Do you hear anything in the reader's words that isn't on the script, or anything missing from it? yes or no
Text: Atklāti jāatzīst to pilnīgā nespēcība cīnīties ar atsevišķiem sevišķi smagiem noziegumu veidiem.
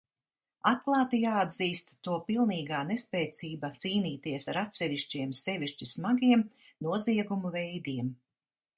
no